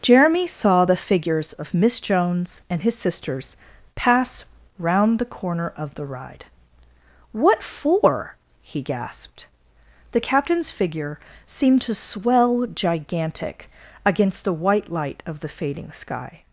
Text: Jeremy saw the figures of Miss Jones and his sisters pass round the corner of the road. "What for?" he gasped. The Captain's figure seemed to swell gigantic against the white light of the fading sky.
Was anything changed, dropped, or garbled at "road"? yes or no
yes